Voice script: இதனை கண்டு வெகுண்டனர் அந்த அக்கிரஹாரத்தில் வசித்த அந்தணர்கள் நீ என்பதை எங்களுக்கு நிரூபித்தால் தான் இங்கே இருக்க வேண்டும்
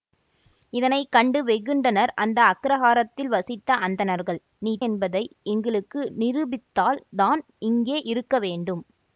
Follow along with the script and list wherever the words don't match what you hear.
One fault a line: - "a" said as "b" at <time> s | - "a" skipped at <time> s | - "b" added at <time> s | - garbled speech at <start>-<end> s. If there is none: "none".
none